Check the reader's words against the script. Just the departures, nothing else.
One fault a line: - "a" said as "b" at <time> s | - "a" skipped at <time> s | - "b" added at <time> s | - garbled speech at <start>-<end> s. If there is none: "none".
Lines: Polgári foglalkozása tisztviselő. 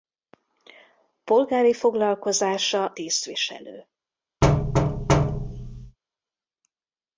none